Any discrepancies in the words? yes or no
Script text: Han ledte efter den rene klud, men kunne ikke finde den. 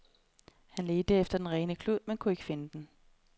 no